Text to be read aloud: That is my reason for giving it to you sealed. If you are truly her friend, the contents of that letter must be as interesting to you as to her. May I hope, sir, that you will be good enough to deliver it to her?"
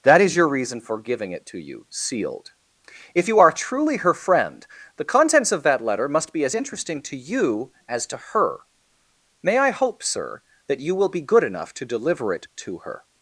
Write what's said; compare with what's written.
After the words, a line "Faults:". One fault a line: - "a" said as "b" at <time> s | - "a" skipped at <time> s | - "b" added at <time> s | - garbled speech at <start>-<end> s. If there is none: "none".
That is your reason for giving it to you sealed. If you are truly her friend, the contents of that letter must be as interesting to you as to her. May I hope, sir, that you will be good enough to deliver it to her?"
Faults:
- "my" said as "your" at 0.3 s